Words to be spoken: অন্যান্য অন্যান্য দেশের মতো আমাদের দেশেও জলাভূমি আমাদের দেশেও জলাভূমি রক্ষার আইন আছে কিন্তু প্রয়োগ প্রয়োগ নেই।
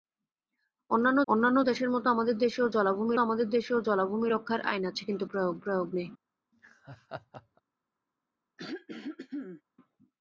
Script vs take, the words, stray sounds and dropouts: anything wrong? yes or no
yes